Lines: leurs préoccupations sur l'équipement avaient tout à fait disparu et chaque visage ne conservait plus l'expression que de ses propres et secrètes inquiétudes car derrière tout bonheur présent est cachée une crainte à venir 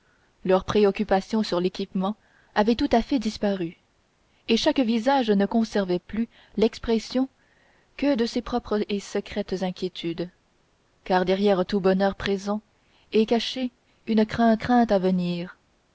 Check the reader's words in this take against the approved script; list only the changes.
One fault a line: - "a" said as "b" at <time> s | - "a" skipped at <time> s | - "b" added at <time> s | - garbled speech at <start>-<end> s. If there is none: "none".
- "crainte" added at 14.6 s